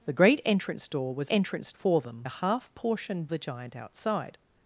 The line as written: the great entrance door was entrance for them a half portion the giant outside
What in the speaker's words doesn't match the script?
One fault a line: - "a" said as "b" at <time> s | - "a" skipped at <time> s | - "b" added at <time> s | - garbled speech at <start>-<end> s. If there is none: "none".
none